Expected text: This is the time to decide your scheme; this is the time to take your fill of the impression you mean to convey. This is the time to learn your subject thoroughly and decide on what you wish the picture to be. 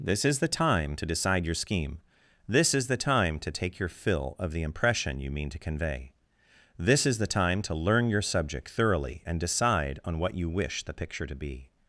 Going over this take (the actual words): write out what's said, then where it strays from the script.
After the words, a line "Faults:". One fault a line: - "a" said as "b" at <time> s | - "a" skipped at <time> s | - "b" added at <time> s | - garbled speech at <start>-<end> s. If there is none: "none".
This is the time to decide your scheme; this is the time to take your fill of the impression you mean to convey. This is the time to learn your subject thoroughly and decide on what you wish the picture to be.
Faults:
none